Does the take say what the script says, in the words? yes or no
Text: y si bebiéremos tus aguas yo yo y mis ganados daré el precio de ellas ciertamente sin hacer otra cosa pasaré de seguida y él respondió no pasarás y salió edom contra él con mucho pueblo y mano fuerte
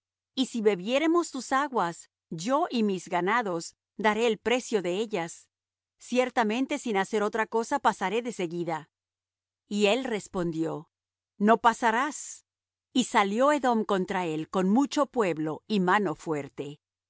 no